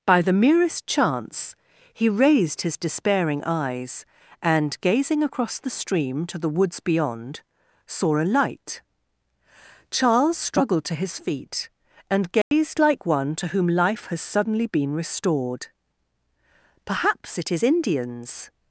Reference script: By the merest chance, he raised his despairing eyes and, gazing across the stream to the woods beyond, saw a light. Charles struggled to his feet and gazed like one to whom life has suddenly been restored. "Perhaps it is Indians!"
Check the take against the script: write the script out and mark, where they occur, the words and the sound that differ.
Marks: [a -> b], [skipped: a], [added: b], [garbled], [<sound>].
By the merest chance, he raised his despairing eyes and, gazing across the stream to the woods beyond, saw a light. Charles struggled to his feet and gazed [dropout] like one to whom life has suddenly been restored. "Perhaps it is Indians!"